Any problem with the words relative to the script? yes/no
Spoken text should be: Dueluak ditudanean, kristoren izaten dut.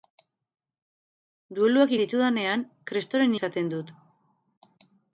no